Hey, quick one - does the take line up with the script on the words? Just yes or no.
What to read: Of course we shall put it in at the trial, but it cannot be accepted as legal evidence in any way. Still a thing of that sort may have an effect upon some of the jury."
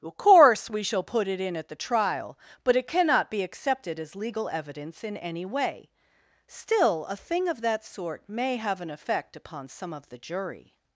yes